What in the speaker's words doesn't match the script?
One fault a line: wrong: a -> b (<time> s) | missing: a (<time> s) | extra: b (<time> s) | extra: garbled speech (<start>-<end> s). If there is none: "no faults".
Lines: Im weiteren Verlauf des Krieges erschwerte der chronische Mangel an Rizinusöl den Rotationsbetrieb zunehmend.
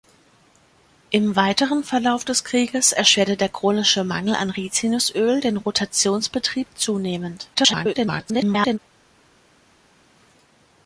extra: garbled speech (7.5-8.8 s)